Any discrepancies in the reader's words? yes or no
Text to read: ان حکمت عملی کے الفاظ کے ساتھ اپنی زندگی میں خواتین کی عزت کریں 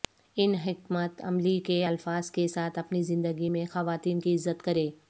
no